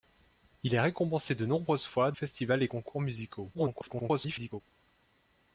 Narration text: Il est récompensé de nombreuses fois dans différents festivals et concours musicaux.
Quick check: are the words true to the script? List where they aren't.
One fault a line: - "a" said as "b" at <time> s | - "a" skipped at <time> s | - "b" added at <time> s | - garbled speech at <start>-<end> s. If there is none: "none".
- "dans différents" skipped at 2.1 s
- garbled speech at 3.5-4.6 s